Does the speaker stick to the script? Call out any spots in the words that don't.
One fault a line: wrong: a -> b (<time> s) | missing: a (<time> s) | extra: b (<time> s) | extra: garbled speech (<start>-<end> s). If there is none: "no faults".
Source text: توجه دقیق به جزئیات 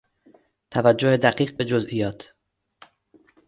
no faults